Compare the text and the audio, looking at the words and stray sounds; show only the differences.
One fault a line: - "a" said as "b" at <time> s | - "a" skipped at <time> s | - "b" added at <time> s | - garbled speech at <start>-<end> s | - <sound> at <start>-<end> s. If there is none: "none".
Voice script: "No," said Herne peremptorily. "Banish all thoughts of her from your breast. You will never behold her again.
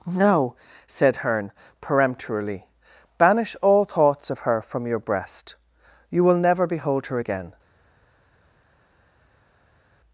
none